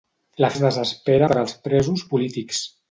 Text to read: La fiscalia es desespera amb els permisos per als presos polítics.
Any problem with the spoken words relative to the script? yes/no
yes